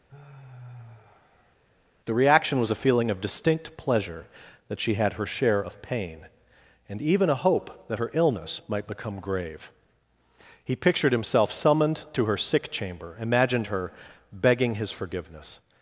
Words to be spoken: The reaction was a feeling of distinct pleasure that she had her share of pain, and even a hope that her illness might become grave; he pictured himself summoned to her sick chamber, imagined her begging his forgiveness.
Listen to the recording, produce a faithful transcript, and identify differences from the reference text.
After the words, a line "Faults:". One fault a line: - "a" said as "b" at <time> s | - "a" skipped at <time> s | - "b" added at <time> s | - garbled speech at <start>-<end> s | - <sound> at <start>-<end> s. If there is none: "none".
The reaction was a feeling of distinct pleasure that she had her share of pain, and even a hope that her illness might become grave; he pictured himself summoned to her sick chamber, imagined her begging his forgiveness.
Faults:
- sigh at 0.1-1.6 s